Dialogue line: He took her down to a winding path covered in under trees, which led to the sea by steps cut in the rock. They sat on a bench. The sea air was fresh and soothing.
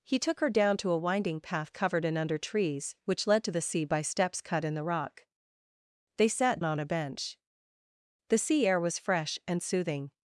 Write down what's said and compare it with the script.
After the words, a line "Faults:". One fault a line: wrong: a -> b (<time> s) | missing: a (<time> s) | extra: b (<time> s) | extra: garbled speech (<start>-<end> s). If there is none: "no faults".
He took her down to a winding path covered in under trees, which led to the sea by steps cut in the rock. They sat on a bench. The sea air was fresh and soothing.
Faults:
no faults